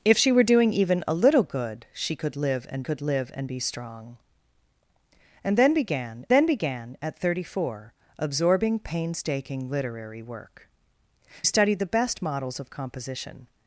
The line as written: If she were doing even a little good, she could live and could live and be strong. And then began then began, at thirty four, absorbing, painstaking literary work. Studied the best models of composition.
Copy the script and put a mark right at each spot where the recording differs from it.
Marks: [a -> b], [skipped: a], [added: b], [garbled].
If she were doing even a little good, she could live and could live and be strong. And then began then began, at thirty four, absorbing, painstaking literary work. Studied the best models of composition.